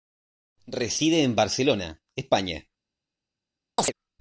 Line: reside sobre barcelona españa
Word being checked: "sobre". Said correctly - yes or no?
no